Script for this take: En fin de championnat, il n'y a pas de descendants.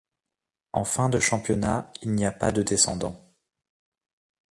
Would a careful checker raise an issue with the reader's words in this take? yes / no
no